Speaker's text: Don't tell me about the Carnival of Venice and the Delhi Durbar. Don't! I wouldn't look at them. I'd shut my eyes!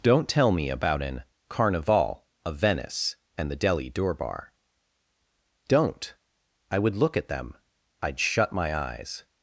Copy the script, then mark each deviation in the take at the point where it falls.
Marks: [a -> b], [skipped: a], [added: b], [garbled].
Don't tell me about [the -> an] Carnival of Venice and the Delhi Durbar. Don't! I [wouldn't -> would] look at them. I'd shut my eyes!